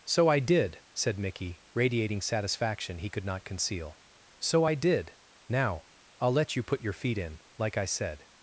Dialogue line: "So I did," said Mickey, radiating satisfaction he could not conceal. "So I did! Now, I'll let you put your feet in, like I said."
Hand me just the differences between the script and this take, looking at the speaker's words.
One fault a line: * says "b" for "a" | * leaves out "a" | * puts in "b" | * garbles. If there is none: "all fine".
all fine